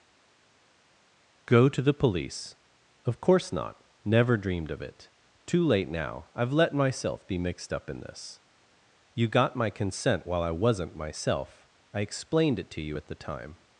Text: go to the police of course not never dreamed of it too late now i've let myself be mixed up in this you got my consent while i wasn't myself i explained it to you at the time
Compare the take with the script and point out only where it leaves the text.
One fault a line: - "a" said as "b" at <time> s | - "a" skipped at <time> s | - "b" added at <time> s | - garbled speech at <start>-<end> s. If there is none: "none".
none